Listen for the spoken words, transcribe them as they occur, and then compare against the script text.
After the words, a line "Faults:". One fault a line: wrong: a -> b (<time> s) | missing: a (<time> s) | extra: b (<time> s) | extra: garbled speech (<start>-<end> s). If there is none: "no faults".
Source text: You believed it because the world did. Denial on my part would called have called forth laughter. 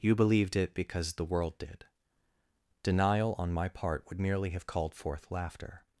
You believed it because the world did. Denial on my part would merely have called forth laughter.
Faults:
wrong: called -> merely (4.2 s)